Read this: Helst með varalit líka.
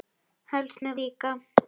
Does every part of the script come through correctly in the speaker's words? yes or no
no